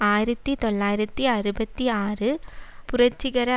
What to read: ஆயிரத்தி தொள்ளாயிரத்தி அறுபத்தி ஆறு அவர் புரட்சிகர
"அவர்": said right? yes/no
no